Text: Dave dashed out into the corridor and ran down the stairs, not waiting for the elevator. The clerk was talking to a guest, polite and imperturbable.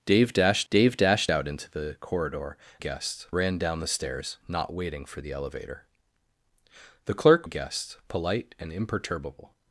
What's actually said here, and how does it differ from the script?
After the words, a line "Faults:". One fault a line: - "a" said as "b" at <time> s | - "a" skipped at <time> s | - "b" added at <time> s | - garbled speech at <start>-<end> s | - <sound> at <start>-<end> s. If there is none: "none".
Dave dashed dave dashed out into the corridor guest ran down the stairs, not waiting for the elevator. The clerk a guest, polite and imperturbable.
Faults:
- "dave dashed" added at 0.7 s
- "and" said as "guest" at 2.8 s
- "was talking to" skipped at 7.5 s